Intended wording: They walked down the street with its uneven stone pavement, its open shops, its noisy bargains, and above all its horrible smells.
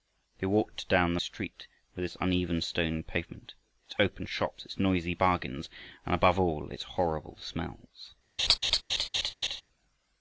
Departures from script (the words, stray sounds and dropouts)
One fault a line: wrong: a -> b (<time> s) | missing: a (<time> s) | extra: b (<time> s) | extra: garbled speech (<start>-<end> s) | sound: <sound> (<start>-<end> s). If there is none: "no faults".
sound: laugh (8.4-9.6 s)